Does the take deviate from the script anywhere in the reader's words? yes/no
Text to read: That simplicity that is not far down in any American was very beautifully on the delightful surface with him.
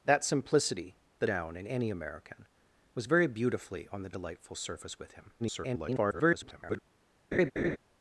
yes